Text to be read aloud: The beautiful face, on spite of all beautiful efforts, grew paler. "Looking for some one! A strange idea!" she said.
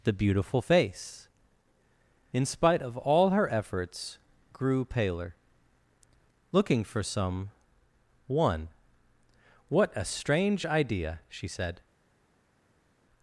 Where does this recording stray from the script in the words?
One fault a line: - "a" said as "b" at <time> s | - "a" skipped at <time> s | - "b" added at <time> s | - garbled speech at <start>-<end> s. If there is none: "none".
- "on" said as "in" at 2.3 s
- "beautiful" said as "her" at 3.3 s
- "What" added at 9.7 s